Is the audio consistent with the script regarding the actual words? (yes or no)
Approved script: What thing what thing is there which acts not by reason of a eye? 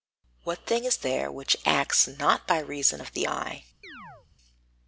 no